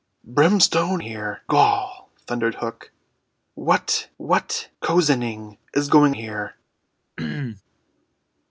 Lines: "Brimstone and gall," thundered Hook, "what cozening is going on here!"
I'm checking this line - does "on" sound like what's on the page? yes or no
no